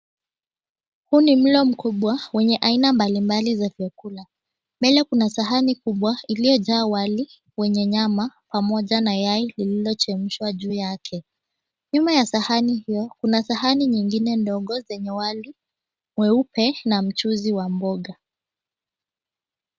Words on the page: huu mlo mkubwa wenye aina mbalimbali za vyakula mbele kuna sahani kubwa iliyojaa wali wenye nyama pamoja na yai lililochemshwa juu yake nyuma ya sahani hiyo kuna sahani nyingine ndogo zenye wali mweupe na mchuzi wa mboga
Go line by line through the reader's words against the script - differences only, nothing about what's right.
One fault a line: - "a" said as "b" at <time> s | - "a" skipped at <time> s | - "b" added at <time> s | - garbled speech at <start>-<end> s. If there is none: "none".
- "ni" added at 1.2 s